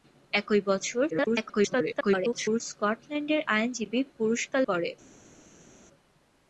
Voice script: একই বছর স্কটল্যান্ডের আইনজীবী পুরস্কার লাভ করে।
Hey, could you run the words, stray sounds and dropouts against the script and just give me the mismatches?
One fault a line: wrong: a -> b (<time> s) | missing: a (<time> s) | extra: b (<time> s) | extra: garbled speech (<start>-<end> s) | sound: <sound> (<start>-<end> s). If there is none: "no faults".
extra: garbled speech (1.1-2.6 s)
missing: লাভ (4.6 s)